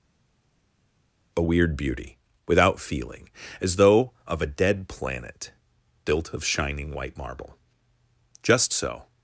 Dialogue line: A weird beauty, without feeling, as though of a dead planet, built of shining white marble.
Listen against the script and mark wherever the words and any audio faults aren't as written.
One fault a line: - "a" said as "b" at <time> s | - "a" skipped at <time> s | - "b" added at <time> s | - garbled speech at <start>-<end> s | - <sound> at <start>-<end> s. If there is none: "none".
- "Just so" added at 8.4 s